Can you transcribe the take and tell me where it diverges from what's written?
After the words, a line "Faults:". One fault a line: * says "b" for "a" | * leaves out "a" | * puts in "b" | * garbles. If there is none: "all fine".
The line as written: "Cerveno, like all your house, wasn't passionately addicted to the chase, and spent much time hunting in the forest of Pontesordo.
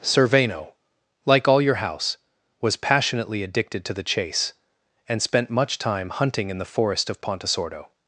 "Cerveno, like all your house, was passionately addicted to the chase, and spent much time hunting in the forest of Pontesordo.
Faults:
* says "was" for "wasn't"